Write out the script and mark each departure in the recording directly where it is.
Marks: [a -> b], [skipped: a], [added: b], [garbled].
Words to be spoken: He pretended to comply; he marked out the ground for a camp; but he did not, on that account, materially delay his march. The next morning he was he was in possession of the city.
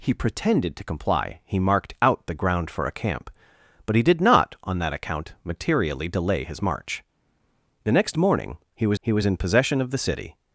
He pretended to comply; he marked out the ground for a camp; but he did not, on that account, materially delay his march. The next morning he was he was in possession of the city.